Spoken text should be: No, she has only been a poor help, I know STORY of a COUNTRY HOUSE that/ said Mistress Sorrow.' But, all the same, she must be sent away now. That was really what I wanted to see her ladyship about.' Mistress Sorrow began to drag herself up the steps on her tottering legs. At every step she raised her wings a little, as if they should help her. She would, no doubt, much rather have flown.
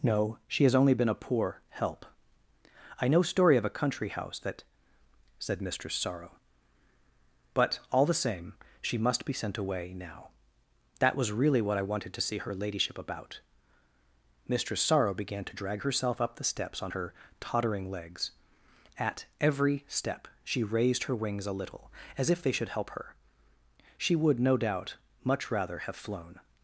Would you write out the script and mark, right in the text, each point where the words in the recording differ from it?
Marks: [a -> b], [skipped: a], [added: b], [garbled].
No, she has only been a poor help, I know STORY of a COUNTRY HOUSE that/ said Mistress Sorrow.' But, all the same, she must be sent away now. That was really what I wanted to see her ladyship about.' Mistress Sorrow began to drag herself up the steps on her tottering legs. At every step she raised her wings a little, as if they should help her. She would, no doubt, much rather have flown.